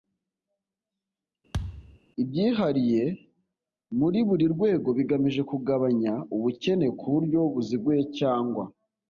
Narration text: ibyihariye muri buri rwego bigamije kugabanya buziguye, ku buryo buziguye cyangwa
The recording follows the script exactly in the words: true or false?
false